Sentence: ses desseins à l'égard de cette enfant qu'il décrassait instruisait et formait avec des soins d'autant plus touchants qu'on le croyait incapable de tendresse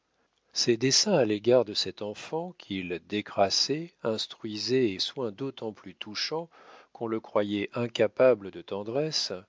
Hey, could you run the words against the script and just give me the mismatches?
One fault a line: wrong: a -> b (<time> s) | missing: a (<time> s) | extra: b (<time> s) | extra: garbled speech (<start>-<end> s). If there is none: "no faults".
missing: formait avec des (5.0 s)